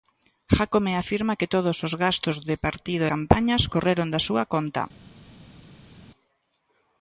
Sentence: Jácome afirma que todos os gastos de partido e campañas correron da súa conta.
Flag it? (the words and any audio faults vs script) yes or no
yes